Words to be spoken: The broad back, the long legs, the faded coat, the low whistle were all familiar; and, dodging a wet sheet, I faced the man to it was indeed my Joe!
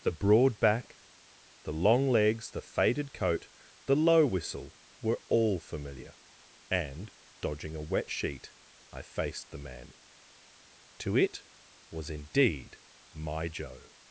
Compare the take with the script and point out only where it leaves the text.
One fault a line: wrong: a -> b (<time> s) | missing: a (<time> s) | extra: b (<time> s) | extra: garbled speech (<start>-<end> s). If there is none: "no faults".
no faults